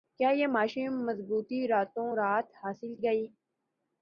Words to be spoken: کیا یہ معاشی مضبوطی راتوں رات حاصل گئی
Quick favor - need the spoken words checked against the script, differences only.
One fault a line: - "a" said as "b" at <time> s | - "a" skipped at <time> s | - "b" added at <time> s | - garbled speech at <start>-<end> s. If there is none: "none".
none